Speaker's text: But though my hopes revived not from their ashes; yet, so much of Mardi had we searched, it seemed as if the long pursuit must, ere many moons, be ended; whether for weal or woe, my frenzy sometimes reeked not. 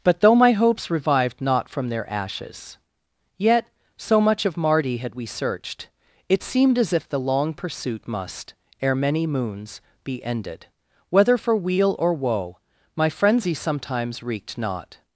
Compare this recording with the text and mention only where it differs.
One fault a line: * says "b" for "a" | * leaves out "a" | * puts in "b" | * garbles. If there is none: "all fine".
all fine